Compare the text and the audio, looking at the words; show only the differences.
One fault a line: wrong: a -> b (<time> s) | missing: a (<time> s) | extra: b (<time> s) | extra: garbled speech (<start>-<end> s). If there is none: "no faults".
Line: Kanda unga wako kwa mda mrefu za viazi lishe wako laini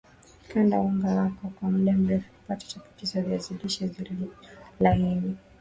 extra: kupata chapati (2.3 s)
wrong: wako -> zilizo (3.9 s)